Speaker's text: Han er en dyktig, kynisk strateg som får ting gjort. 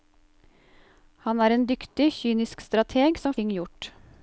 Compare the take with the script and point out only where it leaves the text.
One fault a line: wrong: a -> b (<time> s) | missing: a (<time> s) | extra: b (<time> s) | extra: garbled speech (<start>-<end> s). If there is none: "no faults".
missing: får (3.4 s)